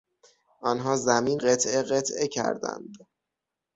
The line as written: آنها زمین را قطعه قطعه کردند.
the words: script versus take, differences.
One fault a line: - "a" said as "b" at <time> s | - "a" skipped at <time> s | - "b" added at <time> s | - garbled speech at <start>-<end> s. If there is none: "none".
- "را" skipped at 1.4 s